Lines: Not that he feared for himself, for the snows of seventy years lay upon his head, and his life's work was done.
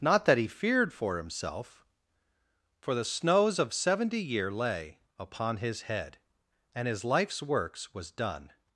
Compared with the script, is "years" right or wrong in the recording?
wrong